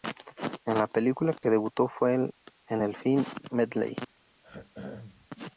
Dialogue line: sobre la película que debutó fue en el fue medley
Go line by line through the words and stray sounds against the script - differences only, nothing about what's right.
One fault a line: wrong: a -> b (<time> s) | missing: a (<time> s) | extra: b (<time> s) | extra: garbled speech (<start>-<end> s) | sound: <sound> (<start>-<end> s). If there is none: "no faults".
wrong: sobre -> en (0.7 s)
sound: dropout (1.4-1.4 s)
wrong: fue -> film (2.9 s)
sound: throat clearing (4.4-5.3 s)